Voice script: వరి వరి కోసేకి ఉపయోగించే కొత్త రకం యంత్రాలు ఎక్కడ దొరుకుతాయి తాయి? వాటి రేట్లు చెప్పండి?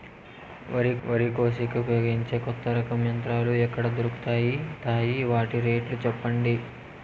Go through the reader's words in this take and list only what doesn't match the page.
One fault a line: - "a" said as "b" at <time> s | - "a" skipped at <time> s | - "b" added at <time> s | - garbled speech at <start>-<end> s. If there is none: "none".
none